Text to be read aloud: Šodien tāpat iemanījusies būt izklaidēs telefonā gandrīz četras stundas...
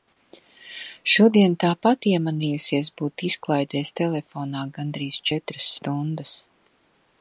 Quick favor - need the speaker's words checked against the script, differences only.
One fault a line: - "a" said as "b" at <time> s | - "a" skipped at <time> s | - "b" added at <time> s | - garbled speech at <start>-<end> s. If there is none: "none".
none